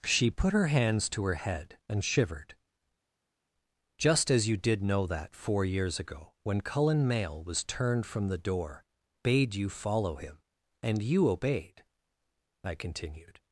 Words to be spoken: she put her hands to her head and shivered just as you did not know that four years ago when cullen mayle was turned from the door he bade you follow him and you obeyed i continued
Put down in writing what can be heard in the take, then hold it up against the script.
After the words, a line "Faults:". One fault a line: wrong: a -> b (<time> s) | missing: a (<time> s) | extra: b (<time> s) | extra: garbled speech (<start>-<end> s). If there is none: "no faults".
she put her hands to her head and shivered just as you did know that four years ago when cullen mayle was turned from the door bade you follow him and you obeyed i continued
Faults:
missing: not (4.8 s)
missing: he (8.8 s)